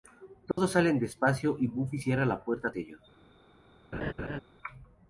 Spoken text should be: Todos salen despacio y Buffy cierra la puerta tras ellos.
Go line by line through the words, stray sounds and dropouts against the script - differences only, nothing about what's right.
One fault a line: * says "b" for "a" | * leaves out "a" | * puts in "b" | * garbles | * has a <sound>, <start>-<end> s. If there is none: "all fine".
* has a dropout, 0.5-0.6 s
* leaves out "tras"
* has a laugh, 3.9-4.4 s